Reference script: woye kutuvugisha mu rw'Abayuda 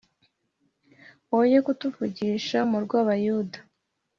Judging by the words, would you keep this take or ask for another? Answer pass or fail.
pass